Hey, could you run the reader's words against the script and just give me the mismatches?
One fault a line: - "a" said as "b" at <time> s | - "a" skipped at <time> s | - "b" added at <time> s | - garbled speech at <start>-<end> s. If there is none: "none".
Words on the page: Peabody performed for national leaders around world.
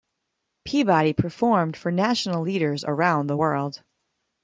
- "the" added at 3.3 s